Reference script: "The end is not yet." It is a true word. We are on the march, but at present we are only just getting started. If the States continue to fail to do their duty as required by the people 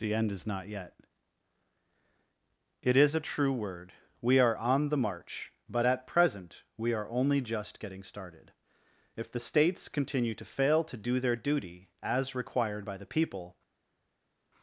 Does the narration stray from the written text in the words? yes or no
no